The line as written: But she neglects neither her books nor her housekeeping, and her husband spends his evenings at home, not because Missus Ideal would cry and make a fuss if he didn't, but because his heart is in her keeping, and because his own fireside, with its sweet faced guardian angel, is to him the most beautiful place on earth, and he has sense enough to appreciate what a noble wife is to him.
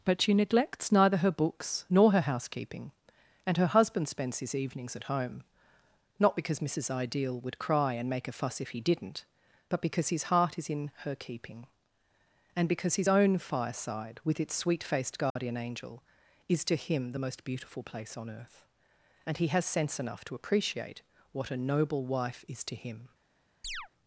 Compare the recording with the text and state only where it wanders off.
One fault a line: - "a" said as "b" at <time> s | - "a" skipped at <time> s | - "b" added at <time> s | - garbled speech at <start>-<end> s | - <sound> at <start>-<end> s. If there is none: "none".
- dropout at 15.3-15.4 s
- chirp at 23.6-23.9 s